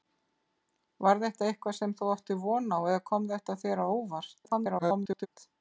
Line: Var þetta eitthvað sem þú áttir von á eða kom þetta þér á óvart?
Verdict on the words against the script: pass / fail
fail